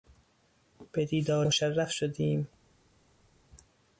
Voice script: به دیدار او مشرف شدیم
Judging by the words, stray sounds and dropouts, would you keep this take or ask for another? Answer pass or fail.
fail